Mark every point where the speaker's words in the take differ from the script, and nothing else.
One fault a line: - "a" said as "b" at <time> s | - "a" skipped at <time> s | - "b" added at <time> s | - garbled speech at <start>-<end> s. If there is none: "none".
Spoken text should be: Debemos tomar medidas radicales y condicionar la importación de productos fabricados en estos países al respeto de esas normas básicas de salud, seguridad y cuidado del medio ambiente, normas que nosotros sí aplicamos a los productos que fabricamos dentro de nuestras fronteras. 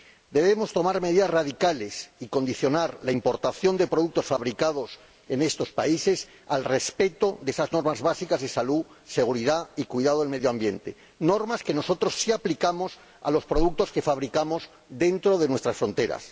none